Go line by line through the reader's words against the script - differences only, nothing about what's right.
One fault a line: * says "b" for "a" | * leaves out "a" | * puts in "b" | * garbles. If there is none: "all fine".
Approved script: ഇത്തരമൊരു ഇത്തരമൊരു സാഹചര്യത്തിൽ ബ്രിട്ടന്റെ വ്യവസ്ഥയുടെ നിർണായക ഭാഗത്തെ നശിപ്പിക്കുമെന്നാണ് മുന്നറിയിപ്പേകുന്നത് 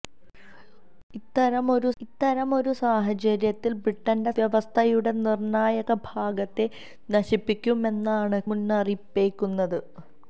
all fine